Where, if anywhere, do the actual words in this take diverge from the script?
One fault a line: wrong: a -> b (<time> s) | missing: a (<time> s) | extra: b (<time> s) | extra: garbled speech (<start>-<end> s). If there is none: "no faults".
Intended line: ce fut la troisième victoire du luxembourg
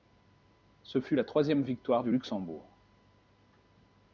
no faults